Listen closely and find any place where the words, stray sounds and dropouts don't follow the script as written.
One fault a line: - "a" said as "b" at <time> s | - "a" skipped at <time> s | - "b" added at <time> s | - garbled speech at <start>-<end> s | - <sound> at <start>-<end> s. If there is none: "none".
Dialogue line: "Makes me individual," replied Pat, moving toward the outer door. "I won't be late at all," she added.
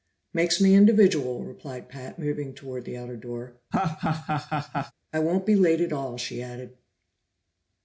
- laugh at 3.7-4.9 s